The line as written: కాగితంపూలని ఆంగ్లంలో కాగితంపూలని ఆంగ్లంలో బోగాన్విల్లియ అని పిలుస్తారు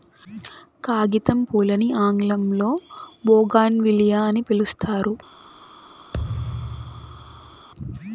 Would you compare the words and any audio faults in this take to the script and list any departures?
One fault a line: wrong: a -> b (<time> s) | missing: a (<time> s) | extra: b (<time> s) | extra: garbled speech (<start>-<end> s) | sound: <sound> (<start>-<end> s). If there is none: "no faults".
missing: కాగితంపూలని ఆంగ్లంలో (2.7 s)
sound: thud (6.1-7.7 s)